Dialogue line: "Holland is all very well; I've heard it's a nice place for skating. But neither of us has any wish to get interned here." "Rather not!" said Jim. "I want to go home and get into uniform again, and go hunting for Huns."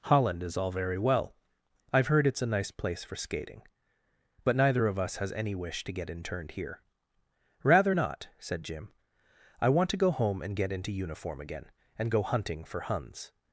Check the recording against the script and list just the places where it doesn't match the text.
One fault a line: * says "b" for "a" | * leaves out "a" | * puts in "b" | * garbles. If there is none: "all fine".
all fine